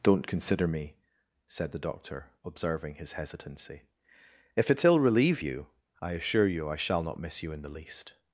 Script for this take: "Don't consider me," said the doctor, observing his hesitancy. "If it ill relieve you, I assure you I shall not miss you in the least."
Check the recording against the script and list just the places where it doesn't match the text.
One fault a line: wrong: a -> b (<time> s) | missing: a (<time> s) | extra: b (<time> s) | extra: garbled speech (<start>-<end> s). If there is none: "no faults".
no faults